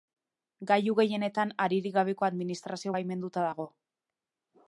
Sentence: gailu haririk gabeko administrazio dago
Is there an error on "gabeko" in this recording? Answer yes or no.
no